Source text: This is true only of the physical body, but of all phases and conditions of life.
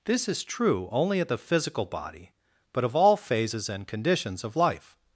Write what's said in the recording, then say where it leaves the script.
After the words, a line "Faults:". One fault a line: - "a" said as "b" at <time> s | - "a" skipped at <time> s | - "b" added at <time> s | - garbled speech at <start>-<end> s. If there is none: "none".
This is true only of the physical body, but of all phases and conditions of life.
Faults:
none